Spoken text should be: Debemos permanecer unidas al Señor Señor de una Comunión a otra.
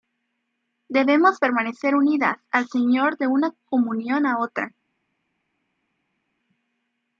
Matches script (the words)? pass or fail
fail